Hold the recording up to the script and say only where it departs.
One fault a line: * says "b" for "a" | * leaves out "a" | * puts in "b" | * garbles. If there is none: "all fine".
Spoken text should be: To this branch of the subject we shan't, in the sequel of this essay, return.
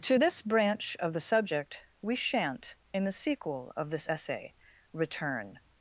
all fine